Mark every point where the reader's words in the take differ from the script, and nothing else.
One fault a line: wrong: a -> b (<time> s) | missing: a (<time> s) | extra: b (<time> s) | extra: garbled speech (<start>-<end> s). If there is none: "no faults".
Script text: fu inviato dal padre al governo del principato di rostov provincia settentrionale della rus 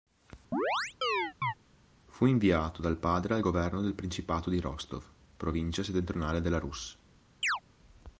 no faults